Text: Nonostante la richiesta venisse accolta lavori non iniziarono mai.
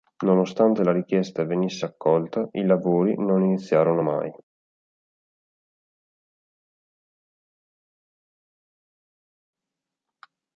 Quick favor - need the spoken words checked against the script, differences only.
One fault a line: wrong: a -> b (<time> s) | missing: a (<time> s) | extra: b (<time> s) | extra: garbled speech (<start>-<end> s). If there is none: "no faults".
extra: i (2.5 s)